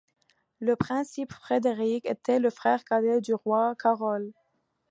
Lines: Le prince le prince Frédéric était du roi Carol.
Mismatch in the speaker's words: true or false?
true